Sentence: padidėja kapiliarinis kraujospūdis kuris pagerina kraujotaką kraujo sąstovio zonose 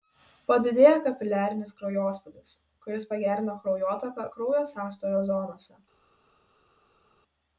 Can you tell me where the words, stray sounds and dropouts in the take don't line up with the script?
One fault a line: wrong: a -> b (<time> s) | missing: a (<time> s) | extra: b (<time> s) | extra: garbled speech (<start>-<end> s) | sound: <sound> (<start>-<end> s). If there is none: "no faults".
no faults